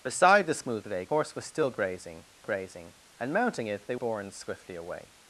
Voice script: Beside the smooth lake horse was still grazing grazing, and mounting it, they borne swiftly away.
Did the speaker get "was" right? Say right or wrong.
right